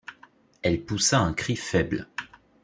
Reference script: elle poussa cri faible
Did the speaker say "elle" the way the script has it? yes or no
yes